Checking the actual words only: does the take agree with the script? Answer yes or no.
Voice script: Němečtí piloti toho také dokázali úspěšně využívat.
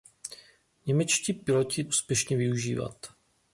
no